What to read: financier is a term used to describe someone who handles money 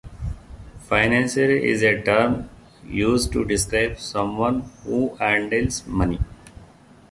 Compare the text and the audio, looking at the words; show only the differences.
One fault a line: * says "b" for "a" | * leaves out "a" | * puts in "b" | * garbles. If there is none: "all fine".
all fine